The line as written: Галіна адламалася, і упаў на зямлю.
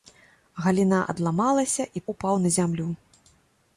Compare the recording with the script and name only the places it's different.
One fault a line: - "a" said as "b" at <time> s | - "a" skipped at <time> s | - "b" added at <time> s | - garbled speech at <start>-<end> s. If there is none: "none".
none